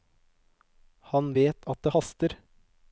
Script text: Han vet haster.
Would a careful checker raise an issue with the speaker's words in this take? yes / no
yes